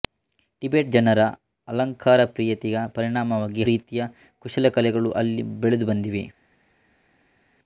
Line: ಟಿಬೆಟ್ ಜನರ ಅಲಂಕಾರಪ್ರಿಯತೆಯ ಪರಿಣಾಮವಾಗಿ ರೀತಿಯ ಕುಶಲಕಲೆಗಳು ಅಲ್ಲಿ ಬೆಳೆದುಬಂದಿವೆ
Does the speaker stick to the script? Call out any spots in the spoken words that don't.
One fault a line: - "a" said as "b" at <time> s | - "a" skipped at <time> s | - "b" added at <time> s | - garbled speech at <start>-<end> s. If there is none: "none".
none